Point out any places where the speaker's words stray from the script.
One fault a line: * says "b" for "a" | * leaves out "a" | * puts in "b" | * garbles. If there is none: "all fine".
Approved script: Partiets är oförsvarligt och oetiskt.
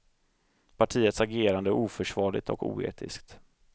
* puts in "agerande"